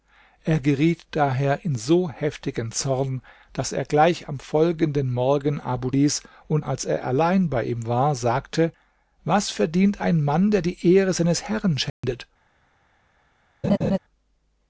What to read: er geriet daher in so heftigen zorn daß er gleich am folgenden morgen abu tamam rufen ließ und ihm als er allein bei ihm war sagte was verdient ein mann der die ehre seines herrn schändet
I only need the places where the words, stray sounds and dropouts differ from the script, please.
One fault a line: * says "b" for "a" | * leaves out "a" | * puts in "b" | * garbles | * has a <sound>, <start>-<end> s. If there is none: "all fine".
* leaves out "tamam rufen"
* leaves out "ihm"
* has a dropout, 11.9-12.0 s
* has a laugh, 13.6-14.0 s